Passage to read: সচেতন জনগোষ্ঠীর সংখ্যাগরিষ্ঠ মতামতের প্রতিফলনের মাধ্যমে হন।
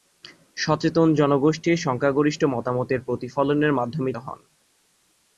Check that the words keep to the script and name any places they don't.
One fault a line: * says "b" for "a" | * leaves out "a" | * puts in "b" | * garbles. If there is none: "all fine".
all fine